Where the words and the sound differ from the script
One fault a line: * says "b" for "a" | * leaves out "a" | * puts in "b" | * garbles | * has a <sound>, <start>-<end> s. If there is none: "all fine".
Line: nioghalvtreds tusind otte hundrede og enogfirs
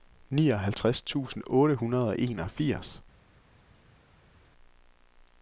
all fine